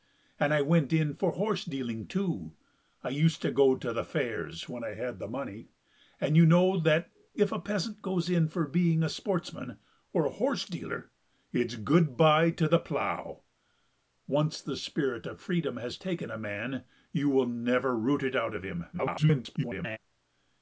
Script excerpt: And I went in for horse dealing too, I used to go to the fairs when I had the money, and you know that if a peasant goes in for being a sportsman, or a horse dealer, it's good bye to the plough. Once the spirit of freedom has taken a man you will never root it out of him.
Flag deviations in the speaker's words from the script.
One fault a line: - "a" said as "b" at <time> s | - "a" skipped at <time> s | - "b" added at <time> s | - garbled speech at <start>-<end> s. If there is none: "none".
- garbled speech at 18.9-20.0 s